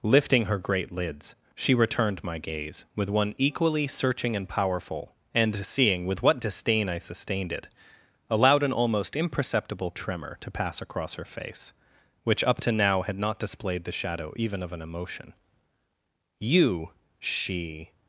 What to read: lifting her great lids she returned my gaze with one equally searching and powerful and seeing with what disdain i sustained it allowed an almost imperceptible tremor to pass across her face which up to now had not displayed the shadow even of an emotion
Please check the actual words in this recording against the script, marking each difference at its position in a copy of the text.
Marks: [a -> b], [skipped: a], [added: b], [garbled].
lifting her great lids she returned my gaze with one equally searching and powerful and seeing with what disdain i sustained it allowed an almost imperceptible tremor to pass across her face which up to now had not displayed the shadow even of an emotion [added: you she]